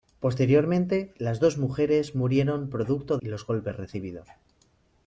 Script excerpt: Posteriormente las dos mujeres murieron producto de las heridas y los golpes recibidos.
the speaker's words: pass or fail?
fail